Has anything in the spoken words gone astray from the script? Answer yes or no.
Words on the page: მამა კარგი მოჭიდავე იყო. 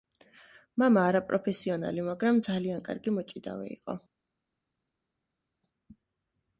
yes